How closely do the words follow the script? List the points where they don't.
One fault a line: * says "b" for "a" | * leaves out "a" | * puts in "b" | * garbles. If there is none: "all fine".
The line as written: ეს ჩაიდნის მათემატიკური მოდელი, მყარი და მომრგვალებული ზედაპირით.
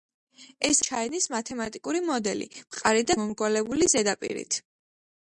all fine